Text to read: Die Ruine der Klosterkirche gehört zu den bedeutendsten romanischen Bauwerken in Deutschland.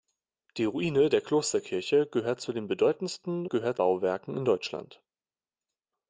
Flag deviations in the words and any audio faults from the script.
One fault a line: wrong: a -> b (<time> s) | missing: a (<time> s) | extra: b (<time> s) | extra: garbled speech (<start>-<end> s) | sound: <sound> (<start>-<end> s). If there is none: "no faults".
wrong: romanischen -> gehört (3.5 s)